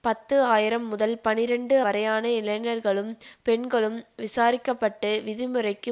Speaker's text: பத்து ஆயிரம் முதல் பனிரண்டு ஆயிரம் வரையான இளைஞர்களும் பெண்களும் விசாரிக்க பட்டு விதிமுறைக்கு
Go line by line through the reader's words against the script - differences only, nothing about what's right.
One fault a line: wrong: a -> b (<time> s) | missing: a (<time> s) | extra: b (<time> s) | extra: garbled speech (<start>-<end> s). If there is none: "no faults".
missing: ஆயிரம் (1.8 s)